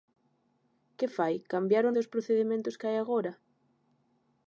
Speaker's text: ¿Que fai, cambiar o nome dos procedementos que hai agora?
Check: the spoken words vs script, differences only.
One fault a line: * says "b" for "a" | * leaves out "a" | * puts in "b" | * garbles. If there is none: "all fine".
* leaves out "nome"